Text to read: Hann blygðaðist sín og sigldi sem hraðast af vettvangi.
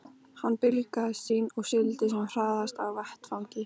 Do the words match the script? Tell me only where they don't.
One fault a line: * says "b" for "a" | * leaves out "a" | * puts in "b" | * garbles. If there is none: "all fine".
all fine